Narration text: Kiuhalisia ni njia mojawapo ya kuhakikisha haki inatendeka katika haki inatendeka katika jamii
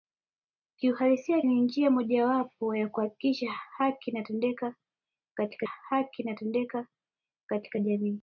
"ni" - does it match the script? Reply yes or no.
yes